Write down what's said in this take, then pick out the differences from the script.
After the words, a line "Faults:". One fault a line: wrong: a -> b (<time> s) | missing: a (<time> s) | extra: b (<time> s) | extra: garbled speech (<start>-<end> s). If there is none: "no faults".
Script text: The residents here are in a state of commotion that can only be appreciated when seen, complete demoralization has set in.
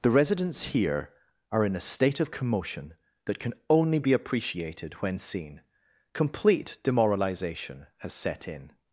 The residents here are in a state of commotion that can only be appreciated when seen, complete demoralization has set in.
Faults:
no faults